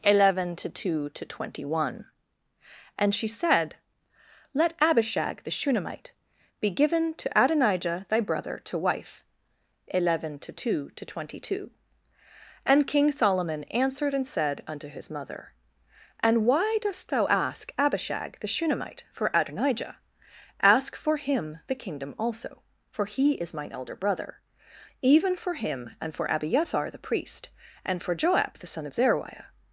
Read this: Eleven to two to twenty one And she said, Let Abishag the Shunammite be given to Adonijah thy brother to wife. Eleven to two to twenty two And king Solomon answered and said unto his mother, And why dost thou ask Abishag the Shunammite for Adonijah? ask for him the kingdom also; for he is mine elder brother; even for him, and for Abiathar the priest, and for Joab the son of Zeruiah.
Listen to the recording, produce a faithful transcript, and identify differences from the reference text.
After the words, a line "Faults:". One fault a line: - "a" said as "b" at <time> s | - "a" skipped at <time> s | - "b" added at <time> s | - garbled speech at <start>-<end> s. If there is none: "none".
Eleven to two to twenty one And she said, Let Abishag the Shunammite be given to Adonijah thy brother to wife. Eleven to two to twenty two And king Solomon answered and said unto his mother, And why dost thou ask Abishag the Shunammite for Adonijah? ask for him the kingdom also; for he is mine elder brother; even for him, and for Abiathar the priest, and for Joab the son of Zeruiah.
Faults:
none